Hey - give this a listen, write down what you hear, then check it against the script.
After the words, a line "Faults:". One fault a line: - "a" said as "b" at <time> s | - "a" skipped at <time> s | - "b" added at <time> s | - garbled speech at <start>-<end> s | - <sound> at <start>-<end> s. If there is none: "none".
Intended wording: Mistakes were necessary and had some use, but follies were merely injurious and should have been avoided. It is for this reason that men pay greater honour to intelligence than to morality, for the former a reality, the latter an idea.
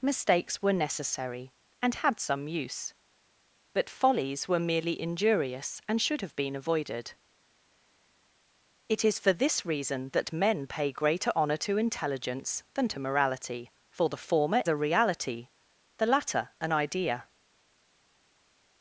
Mistakes were necessary and had some use, but follies were merely injurious and should have been avoided. It is for this reason that men pay greater honour to intelligence than to morality, for the former a reality, the latter an idea.
Faults:
none